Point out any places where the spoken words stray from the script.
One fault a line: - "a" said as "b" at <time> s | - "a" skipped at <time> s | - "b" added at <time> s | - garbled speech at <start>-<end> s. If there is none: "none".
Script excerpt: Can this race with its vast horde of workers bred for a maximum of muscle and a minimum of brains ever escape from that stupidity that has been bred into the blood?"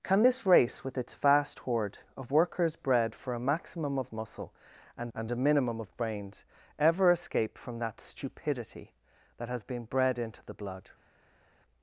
- "and" added at 5.1 s